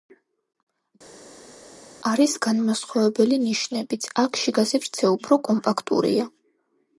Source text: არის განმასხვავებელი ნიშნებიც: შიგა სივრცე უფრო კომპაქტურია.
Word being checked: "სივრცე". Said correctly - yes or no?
yes